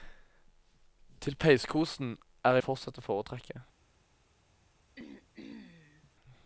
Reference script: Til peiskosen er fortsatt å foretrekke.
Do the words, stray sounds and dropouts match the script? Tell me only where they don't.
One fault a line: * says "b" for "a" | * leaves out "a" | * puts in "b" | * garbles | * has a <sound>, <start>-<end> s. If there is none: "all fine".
* has a throat clearing, 5.0-6.1 s